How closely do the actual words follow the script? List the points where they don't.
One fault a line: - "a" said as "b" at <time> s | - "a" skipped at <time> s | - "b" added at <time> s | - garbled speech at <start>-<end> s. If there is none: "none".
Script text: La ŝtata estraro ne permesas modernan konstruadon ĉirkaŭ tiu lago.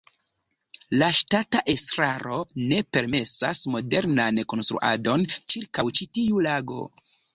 - "ĉi" added at 6.0 s